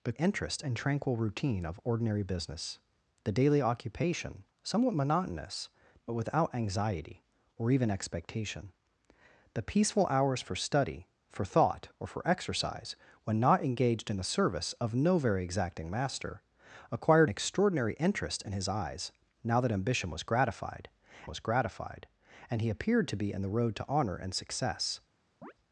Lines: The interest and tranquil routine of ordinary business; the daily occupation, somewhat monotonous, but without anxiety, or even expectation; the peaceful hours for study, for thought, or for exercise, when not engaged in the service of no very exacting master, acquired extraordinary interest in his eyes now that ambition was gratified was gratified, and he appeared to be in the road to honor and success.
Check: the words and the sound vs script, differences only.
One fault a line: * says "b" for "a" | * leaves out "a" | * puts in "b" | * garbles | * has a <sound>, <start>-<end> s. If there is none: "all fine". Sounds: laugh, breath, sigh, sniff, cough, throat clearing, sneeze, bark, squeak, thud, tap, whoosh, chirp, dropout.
* has a chirp, 25.4-25.5 s